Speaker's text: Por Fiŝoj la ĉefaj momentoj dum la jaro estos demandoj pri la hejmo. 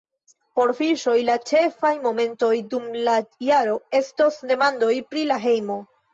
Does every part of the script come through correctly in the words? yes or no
yes